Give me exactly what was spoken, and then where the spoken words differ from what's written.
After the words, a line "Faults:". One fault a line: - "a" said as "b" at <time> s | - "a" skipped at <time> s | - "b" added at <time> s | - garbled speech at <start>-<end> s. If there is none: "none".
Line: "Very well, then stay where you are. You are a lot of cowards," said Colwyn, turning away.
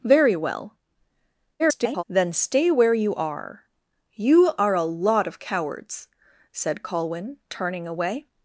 "Very well, [garbled] then stay where you are. You are a lot of cowards," said Colwyn, turning away.
Faults:
- garbled speech at 1.6-2.0 s